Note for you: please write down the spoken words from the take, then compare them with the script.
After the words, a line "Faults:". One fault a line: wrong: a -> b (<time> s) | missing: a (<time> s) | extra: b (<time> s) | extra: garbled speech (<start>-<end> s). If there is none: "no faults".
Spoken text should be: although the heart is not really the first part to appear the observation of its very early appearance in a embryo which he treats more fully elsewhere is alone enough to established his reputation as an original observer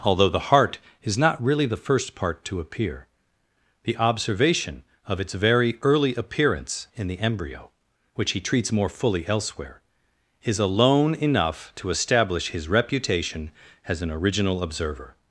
although the heart is not really the first part to appear the observation of its very early appearance in the embryo which he treats more fully elsewhere is alone enough to establish his reputation as an original observer
Faults:
wrong: a -> the (7.1 s)
wrong: established -> establish (11.9 s)